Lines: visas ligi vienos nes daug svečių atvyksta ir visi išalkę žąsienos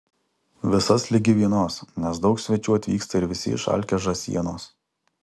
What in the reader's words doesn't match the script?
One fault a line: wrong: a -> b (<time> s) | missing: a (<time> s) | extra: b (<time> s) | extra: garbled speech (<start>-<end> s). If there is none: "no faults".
no faults